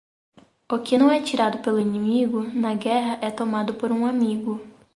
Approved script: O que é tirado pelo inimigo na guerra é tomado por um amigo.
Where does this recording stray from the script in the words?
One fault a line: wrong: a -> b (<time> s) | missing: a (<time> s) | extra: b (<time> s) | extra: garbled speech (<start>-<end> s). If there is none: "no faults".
extra: não (0.9 s)